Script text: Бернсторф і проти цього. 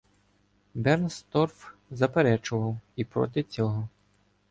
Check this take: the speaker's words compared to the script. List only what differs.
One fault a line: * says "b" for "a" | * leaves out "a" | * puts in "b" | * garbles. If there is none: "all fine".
* puts in "заперечував"